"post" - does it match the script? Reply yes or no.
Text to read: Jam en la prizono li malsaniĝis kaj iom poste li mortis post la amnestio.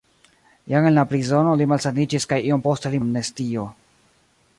no